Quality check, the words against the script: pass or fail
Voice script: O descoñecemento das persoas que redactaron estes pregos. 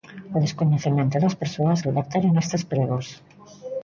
fail